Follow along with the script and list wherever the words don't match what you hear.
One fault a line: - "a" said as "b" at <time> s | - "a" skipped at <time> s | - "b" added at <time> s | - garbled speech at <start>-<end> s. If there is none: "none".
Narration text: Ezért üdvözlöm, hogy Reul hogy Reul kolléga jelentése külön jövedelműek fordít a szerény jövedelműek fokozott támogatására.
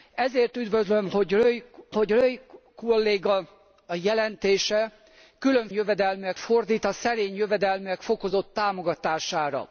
none